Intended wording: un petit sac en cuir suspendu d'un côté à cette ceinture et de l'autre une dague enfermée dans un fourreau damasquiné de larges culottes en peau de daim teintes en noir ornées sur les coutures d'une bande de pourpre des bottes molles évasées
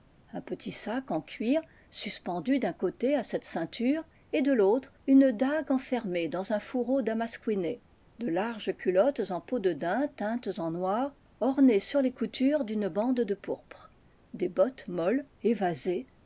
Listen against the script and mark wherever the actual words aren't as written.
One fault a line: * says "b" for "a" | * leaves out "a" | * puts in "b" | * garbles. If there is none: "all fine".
all fine